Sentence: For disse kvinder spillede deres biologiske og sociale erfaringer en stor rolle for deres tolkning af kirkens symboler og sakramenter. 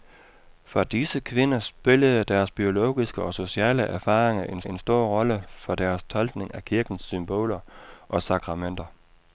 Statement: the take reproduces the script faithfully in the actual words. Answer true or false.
false